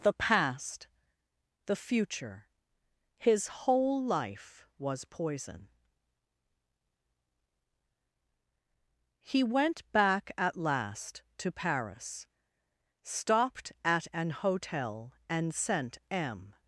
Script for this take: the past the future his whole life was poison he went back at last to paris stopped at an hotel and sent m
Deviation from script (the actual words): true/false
false